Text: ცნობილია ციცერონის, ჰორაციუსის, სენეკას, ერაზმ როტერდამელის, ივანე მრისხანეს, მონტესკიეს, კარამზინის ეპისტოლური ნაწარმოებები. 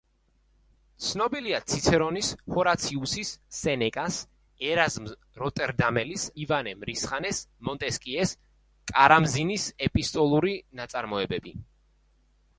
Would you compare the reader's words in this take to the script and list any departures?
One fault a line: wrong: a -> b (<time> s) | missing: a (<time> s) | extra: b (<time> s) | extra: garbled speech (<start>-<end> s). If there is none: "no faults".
no faults